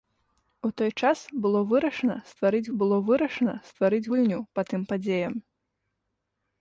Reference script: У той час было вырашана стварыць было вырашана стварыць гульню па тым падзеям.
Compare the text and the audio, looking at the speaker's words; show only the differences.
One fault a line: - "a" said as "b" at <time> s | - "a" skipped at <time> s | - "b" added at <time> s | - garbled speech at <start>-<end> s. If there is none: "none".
none